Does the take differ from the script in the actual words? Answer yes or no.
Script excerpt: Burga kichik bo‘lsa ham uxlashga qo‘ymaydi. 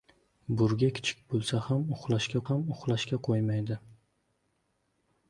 yes